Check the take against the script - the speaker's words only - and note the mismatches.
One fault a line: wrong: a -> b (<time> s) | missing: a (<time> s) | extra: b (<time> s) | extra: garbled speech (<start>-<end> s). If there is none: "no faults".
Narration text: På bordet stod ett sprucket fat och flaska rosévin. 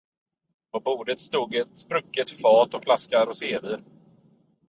no faults